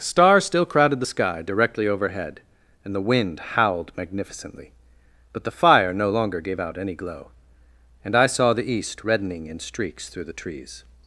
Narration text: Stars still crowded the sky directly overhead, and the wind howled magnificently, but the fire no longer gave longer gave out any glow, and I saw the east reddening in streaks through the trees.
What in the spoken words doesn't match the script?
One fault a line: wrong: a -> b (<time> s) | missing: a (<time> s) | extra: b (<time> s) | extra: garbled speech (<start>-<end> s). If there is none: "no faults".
missing: longer gave (6.6 s)